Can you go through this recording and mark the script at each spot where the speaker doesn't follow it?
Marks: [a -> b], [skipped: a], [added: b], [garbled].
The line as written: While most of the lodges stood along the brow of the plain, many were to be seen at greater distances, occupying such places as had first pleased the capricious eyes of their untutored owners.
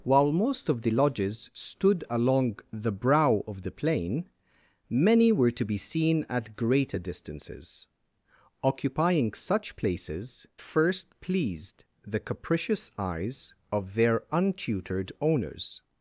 While most of the lodges stood along the brow of the plain, many were to be seen at greater distances, occupying such places [skipped: as had] first pleased the capricious eyes of their untutored owners.